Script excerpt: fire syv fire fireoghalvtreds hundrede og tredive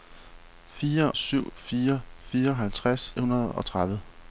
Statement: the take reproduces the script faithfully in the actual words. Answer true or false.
true